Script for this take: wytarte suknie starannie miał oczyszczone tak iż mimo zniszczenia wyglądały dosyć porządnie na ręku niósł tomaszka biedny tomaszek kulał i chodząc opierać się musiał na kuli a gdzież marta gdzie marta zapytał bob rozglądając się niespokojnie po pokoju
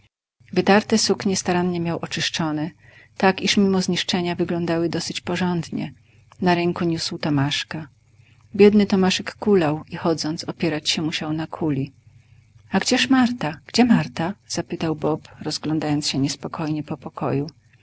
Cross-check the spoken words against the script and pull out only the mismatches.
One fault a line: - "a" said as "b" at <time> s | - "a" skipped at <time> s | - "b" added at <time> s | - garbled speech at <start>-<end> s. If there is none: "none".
none